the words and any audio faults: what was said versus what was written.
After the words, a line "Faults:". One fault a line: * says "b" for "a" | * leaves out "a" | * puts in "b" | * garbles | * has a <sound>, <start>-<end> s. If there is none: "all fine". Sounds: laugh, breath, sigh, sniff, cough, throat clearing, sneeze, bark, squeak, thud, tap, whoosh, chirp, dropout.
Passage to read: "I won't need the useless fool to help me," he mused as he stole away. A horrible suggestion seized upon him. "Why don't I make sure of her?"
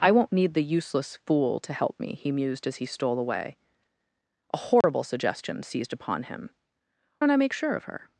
"I won't need the useless fool to help me," he mused as he stole away. A horrible suggestion seized upon him. "Don't I make sure of her?"
Faults:
* has a dropout, 4.8-4.8 s
* leaves out "Why"